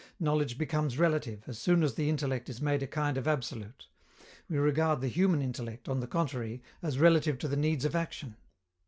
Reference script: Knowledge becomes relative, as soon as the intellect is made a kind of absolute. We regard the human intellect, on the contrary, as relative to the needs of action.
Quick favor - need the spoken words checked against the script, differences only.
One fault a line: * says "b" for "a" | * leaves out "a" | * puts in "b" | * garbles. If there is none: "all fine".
all fine